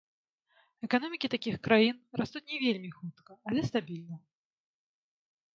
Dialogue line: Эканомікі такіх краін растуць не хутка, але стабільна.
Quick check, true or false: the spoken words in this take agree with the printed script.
false